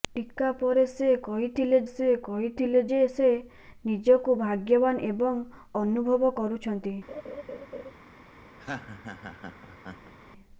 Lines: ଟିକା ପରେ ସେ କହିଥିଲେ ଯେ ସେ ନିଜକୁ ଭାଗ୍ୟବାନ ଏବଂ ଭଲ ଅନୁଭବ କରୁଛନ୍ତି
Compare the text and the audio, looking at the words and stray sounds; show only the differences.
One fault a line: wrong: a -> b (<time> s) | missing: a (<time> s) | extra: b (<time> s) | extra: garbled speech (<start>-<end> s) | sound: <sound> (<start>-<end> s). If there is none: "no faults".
extra: ସେ କହିଥିଲେ (1.9 s)
missing: ଭଲ (5.4 s)
sound: laugh (7.1-7.9 s)
sound: laugh (8.6-10.1 s)